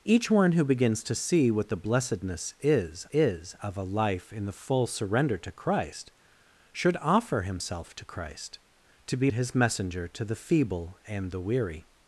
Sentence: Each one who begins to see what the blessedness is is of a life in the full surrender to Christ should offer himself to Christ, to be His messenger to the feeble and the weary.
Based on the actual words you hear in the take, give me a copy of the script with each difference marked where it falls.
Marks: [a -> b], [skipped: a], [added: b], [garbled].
Each one who begins to see what the blessedness is is of a life in the full surrender to Christ should offer himself to Christ, to be His messenger to the feeble and the weary.